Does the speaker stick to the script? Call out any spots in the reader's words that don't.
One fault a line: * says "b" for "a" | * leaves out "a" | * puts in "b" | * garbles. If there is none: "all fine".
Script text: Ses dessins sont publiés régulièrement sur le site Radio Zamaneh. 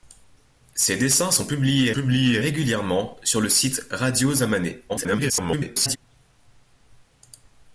* puts in "publiés"
* garbles